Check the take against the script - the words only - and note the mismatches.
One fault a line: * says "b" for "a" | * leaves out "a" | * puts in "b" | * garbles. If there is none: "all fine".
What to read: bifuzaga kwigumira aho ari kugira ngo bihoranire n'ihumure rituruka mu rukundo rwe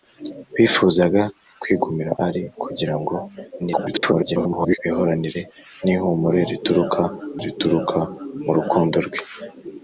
* leaves out "aho"
* garbles
* puts in "rituruka"